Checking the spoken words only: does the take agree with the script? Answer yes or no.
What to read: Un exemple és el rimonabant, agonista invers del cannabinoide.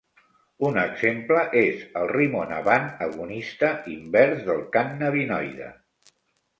yes